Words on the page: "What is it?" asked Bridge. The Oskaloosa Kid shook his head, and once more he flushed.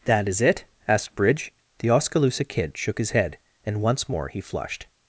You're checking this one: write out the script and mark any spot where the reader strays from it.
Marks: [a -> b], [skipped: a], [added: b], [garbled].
["What -> That] is it?" asked Bridge. The Oskaloosa Kid shook his head, and once more he flushed.